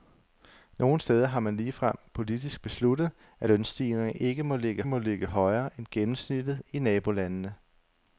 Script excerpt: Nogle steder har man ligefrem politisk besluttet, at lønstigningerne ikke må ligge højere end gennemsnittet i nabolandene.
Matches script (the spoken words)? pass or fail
fail